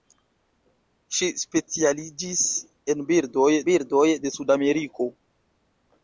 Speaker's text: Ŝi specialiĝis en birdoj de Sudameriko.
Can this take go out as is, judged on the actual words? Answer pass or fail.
fail